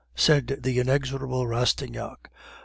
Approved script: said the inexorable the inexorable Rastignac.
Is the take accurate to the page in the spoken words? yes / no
no